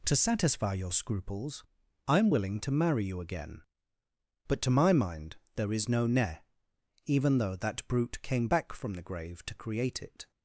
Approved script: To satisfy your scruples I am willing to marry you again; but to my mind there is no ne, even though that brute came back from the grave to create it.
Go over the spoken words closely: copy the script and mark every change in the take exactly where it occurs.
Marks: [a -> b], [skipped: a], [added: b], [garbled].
To satisfy your scruples I am willing to marry you again; but to my mind there is no ne, even though that brute came back from the grave to create it.